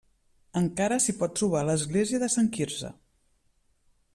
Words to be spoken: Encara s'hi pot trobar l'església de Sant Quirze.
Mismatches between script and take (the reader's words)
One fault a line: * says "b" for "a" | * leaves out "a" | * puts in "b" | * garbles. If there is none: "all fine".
all fine